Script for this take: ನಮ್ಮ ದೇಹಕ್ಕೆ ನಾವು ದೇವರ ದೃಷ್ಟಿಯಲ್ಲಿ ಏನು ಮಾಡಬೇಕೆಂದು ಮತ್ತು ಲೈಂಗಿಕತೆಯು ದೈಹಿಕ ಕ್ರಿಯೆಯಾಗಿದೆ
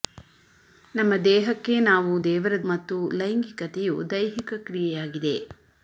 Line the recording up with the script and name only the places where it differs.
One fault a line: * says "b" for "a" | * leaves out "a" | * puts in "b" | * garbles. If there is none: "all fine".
* leaves out "ದೃಷ್ಟಿಯಲ್ಲಿ ಏನು ಮಾಡಬೇಕೆಂದು"